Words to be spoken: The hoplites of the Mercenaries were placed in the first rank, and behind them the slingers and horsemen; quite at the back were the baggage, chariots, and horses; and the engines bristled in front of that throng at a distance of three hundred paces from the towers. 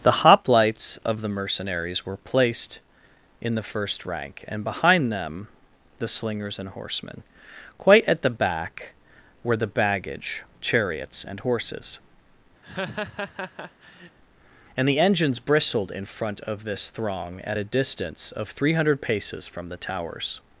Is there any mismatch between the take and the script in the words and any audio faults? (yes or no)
yes